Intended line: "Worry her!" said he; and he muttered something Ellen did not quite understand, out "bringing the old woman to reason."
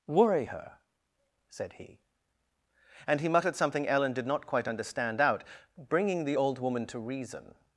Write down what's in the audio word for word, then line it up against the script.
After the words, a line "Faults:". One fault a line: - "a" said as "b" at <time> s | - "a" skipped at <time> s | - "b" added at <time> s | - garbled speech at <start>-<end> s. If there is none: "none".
"Worry her!" said he; and he muttered something Ellen did not quite understand, out "bringing the old woman to reason."
Faults:
none